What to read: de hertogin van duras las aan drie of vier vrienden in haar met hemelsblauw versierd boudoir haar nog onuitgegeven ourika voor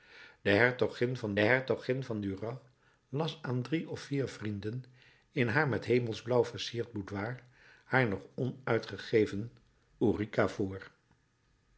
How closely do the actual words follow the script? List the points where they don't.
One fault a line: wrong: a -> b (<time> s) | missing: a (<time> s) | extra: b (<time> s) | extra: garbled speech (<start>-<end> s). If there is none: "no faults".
extra: hertogin van (1.4 s)